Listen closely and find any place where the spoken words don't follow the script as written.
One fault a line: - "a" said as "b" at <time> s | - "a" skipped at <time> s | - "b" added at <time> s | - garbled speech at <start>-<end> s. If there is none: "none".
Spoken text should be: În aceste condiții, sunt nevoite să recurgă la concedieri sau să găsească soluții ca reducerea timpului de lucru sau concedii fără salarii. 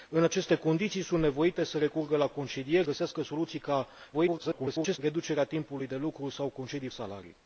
- "sau să" skipped at 2.9 s
- garbled speech at 4.1-5.0 s
- "fără" skipped at 6.9 s